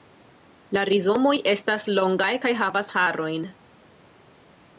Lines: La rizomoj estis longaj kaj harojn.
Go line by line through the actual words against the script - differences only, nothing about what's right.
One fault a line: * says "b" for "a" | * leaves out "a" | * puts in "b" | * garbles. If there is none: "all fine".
* says "estas" for "estis"
* puts in "havas"